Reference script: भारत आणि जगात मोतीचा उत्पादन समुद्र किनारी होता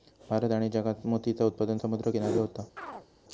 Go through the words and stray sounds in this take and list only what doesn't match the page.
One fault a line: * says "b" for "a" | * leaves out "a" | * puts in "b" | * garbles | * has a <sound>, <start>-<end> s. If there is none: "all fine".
* has a chirp, 2.8-3.1 s